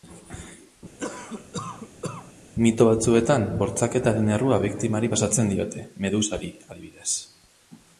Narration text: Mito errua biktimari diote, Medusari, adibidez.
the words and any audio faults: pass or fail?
fail